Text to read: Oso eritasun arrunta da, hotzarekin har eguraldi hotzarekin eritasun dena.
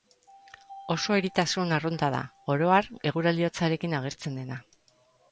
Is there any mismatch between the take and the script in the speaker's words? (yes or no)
yes